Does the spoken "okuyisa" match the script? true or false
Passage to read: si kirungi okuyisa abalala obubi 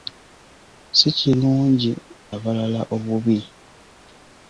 false